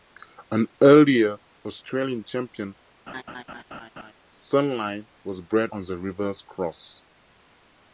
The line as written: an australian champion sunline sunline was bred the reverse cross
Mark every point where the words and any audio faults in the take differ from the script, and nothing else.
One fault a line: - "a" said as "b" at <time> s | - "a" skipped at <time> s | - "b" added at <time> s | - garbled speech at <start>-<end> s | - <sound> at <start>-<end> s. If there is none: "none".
- "earlier" added at 0.8 s
- laugh at 3.1-4.1 s
- "sunline" skipped at 5.1 s
- "on" added at 5.7 s